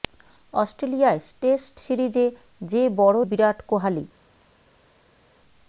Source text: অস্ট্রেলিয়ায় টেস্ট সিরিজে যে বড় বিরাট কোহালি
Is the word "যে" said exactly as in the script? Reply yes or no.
yes